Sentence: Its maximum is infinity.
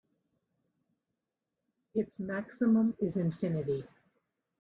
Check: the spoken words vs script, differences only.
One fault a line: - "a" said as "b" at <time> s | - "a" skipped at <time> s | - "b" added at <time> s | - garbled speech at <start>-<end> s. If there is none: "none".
none